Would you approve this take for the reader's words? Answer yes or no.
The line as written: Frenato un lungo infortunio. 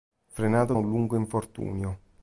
yes